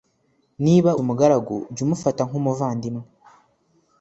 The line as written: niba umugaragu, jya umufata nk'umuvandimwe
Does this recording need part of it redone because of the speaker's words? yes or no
no